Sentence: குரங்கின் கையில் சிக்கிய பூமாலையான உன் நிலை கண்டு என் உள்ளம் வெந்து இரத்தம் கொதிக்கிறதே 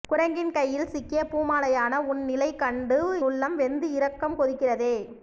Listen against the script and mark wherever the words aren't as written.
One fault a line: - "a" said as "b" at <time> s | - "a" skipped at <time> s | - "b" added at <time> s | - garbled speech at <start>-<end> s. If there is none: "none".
- "என்" skipped at 3.0 s